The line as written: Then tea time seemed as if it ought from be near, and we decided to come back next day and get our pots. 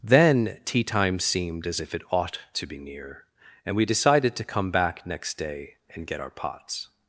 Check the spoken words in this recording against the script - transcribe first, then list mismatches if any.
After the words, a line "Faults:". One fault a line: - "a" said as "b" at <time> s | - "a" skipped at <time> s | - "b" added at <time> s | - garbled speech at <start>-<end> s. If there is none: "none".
Then tea time seemed as if it ought to be near, and we decided to come back next day and get our pots.
Faults:
- "from" said as "to" at 2.5 s